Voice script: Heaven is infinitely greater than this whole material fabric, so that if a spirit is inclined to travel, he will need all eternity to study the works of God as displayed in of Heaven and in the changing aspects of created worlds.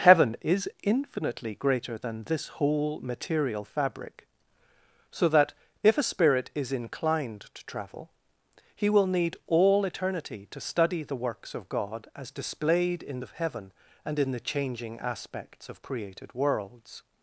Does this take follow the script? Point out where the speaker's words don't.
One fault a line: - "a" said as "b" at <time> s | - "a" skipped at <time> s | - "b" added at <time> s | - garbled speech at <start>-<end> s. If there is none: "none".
none